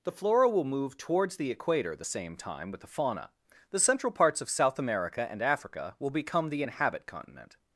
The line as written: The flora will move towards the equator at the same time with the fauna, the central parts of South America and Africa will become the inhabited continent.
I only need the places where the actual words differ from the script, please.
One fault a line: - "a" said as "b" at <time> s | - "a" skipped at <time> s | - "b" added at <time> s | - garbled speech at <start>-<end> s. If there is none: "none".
- "at" skipped at 1.9 s
- "inhabited" said as "inhabit" at 6.6 s